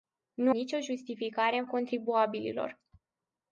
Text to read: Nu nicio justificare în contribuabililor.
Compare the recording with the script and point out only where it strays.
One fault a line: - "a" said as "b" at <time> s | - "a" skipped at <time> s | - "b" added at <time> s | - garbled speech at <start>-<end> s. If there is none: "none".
none